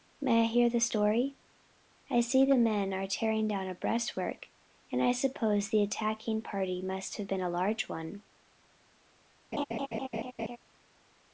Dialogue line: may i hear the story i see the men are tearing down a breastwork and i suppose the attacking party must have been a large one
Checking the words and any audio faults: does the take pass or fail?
fail